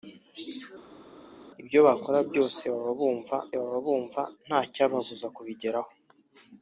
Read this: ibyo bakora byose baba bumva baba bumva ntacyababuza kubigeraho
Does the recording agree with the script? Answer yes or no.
yes